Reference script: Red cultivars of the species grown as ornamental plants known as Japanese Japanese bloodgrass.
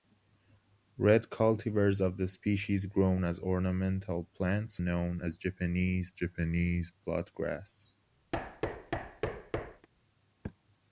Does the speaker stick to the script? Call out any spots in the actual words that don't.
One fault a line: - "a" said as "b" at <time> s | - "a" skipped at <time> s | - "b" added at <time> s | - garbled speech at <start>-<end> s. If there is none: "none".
none